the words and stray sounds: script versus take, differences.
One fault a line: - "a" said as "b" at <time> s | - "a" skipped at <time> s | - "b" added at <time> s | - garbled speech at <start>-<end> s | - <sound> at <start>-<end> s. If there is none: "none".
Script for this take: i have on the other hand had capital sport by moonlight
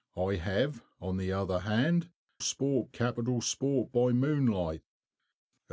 - "had" said as "sport" at 2.4 s